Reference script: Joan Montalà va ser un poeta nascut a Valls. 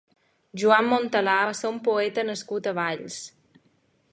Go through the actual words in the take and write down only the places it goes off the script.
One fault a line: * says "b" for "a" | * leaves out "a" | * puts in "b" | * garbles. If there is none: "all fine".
all fine